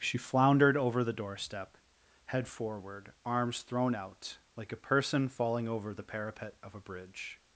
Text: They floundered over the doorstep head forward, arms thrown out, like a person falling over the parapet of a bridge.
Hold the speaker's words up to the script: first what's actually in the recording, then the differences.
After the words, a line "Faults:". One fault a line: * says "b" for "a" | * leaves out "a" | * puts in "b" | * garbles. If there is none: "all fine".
She floundered over the doorstep head forward, arms thrown out, like a person falling over the parapet of a bridge.
Faults:
* says "She" for "They"